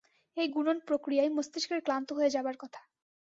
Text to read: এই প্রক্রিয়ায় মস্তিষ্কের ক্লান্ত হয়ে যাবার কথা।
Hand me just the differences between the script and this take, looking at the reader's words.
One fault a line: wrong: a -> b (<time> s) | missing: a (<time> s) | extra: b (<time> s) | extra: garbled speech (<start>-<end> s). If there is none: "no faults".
extra: গুণন (0.4 s)